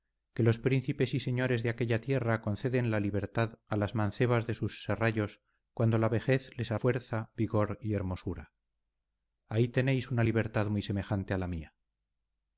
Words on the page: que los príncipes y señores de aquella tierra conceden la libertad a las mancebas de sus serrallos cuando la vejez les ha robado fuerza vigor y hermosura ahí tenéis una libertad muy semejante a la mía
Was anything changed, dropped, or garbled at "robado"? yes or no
yes